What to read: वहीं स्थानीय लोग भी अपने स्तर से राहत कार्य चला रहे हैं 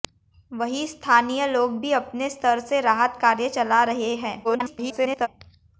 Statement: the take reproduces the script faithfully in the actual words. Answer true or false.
false